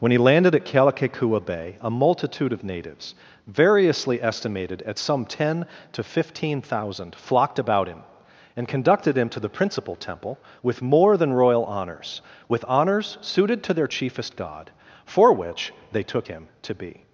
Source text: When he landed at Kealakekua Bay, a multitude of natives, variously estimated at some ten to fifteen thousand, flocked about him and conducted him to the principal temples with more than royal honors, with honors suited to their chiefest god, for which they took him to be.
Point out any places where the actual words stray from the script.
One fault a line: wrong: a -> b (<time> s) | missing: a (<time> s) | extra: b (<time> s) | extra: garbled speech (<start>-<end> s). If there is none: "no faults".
wrong: temples -> temple (10.0 s)